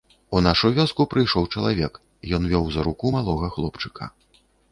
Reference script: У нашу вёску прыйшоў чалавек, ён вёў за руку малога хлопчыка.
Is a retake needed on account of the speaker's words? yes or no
no